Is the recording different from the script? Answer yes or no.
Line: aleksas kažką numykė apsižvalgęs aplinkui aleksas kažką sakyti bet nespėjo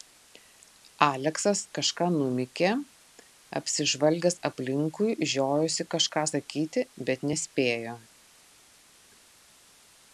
yes